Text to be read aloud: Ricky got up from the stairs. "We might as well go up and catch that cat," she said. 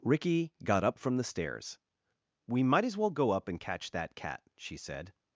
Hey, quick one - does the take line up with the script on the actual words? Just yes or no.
yes